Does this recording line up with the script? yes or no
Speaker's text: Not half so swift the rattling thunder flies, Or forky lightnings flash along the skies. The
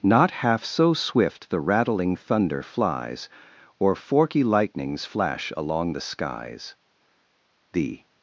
yes